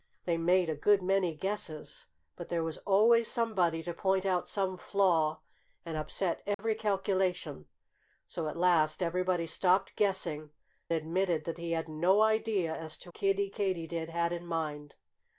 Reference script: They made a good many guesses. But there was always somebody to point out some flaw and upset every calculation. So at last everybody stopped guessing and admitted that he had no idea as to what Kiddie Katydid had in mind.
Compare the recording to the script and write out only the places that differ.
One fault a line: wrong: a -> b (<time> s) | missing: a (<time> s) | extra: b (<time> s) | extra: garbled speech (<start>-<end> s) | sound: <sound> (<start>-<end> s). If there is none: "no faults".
sound: dropout (6.5-6.6 s)
missing: and (10.5 s)
missing: what (13.1 s)